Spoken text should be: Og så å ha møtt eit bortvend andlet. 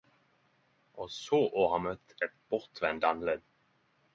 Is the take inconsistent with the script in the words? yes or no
no